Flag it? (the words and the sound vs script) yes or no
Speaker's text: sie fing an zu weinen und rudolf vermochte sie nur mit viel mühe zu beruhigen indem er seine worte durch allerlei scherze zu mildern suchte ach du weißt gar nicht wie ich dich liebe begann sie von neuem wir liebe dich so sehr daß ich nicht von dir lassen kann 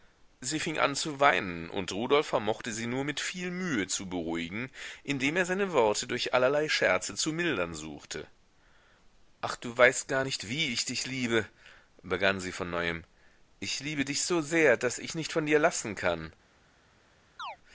yes